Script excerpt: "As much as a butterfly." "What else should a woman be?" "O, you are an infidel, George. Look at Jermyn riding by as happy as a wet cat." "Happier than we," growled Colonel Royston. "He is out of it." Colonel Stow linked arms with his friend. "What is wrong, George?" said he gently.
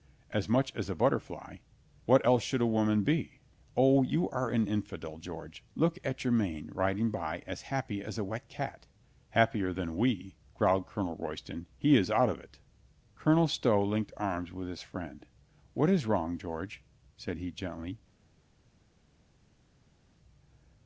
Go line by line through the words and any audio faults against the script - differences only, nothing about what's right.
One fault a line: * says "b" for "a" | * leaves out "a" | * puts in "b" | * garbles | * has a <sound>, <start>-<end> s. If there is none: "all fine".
all fine